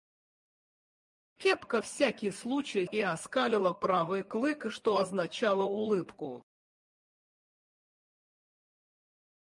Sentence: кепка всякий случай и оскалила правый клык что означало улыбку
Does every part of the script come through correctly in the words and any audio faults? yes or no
yes